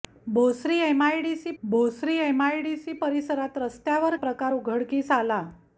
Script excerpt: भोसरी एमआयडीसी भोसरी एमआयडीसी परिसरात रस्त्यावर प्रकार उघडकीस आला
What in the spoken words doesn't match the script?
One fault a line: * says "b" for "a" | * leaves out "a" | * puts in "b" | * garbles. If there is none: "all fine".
all fine